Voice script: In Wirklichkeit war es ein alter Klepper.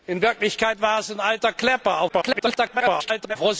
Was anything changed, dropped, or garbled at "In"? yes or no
no